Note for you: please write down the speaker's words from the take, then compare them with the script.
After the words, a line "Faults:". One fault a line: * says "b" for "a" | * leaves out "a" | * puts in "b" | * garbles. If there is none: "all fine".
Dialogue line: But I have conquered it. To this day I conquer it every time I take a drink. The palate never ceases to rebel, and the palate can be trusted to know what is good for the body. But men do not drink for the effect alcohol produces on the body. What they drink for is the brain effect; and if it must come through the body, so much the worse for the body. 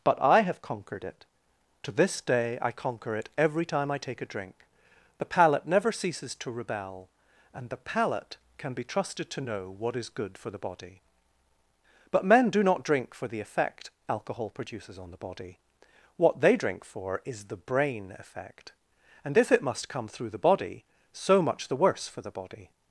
But I have conquered it. To this day I conquer it every time I take a drink. The palate never ceases to rebel, and the palate can be trusted to know what is good for the body. But men do not drink for the effect alcohol produces on the body. What they drink for is the brain effect; and if it must come through the body, so much the worse for the body.
Faults:
all fine